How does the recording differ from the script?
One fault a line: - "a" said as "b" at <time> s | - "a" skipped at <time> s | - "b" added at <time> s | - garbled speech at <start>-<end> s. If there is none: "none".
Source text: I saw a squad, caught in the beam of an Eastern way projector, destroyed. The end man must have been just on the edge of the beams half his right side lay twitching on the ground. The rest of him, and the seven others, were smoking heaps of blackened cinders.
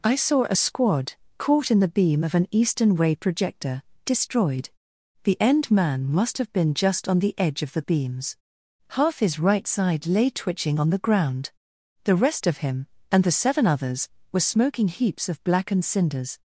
none